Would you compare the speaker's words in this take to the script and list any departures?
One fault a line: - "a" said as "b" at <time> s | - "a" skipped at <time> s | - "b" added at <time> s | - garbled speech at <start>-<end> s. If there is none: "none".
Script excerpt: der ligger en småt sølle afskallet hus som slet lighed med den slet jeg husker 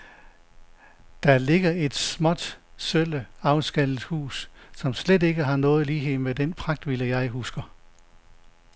- "en" said as "et" at 1.7 s
- "ikke har nogen" added at 5.2 s
- "slet" said as "pragtvilla" at 6.5 s